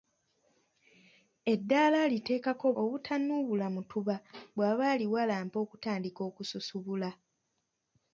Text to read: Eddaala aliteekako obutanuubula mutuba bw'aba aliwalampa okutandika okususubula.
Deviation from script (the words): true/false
false